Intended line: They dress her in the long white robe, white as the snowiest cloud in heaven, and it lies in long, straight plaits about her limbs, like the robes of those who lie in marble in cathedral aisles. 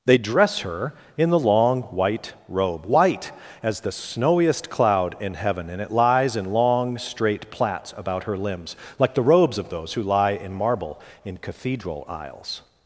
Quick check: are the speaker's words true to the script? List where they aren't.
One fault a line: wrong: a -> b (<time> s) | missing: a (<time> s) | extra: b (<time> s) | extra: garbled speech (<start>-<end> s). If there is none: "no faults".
no faults